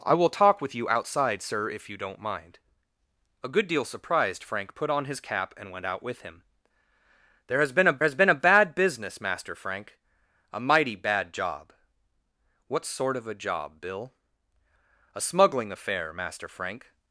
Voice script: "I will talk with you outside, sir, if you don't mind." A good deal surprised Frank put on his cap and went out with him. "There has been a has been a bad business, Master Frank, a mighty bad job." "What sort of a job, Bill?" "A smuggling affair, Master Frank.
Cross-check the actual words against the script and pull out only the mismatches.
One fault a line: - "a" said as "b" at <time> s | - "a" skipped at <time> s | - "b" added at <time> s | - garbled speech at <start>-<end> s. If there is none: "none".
none